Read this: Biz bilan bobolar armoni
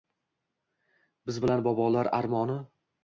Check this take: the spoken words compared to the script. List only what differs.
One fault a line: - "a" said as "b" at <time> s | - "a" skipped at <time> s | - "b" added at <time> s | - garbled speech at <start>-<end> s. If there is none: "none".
none